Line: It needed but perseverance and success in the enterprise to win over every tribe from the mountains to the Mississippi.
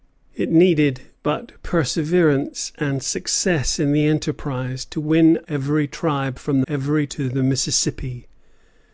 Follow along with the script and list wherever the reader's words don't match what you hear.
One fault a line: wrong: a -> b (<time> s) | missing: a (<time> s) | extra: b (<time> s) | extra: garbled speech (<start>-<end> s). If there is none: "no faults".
missing: over (5.4 s)
wrong: mountains -> every (6.7 s)